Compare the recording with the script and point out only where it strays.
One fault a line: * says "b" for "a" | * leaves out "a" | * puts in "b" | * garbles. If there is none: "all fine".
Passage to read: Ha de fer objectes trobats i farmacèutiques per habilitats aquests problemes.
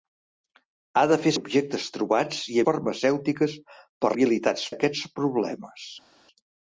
all fine